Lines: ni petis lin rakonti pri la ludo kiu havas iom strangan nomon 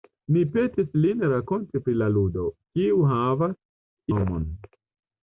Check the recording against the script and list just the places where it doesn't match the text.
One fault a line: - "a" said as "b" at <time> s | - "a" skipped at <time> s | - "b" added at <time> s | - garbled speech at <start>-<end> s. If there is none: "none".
- "iom strangan" skipped at 3.5 s